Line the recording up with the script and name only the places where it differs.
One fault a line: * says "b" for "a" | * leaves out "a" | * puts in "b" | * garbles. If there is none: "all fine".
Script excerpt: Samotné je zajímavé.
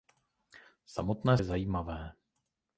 all fine